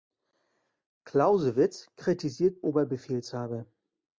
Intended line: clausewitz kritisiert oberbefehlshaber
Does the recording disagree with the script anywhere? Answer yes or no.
no